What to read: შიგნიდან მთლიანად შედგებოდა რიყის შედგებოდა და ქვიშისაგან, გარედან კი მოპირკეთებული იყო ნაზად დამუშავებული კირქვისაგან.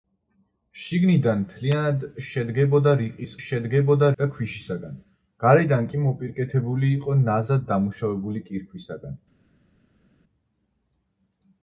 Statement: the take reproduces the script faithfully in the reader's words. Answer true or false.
true